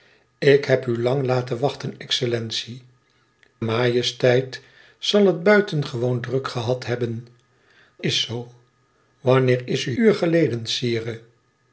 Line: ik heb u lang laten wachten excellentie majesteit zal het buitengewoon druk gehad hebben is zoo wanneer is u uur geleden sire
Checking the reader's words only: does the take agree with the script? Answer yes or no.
yes